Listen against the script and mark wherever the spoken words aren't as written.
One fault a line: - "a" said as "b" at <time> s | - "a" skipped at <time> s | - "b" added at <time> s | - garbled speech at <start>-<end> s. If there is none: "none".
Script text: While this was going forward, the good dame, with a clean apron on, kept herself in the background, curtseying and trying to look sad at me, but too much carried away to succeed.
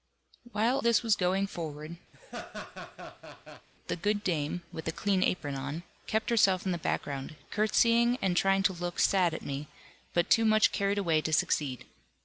none